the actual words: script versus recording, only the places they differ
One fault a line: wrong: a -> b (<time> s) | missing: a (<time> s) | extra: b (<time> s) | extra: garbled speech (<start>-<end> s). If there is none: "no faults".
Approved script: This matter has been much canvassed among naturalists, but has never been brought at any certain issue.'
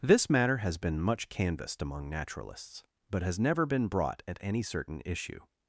no faults